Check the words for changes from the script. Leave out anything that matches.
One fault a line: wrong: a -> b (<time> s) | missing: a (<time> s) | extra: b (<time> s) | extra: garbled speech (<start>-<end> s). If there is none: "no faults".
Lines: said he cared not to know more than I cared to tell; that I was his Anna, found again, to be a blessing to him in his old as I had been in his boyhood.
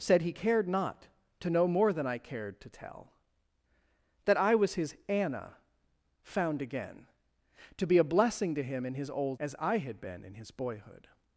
no faults